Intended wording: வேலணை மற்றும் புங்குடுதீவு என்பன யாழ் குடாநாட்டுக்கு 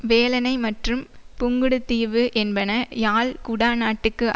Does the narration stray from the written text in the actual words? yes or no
no